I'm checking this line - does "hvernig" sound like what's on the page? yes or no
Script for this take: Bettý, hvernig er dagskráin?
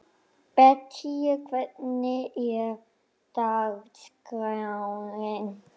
yes